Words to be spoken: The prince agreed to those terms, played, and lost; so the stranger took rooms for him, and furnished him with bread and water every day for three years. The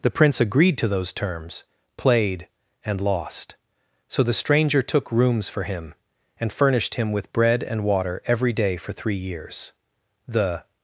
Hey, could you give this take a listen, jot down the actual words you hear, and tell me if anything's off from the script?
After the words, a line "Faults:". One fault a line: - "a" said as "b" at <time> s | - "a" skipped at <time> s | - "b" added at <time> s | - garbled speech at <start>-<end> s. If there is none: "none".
The prince agreed to those terms, played, and lost; so the stranger took rooms for him, and furnished him with bread and water every day for three years. The
Faults:
none